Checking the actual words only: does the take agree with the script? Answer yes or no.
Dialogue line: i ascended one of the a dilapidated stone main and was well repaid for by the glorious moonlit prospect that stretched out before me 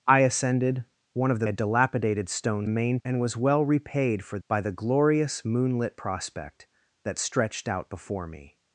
yes